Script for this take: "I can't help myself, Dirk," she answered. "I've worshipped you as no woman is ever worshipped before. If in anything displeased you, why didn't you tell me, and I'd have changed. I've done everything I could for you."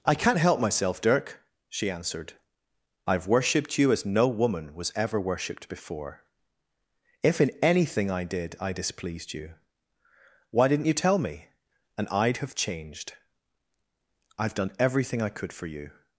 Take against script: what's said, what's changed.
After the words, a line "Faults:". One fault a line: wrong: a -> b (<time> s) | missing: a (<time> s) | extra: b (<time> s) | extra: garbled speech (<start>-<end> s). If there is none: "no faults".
"I can't help myself, Dirk," she answered. "I've worshipped you as no woman was ever worshipped before. If in anything I did I displeased you, why didn't you tell me, and I'd have changed. I've done everything I could for you."
Faults:
wrong: is -> was (4.7 s)
extra: I did I (8.1 s)